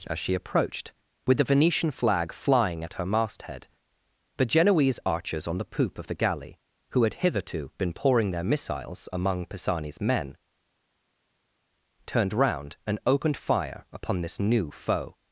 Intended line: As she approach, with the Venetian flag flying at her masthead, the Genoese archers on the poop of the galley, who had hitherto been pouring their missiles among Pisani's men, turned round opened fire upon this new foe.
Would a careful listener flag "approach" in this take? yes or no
yes